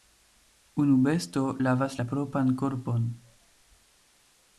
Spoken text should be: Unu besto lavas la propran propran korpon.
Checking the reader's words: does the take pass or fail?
fail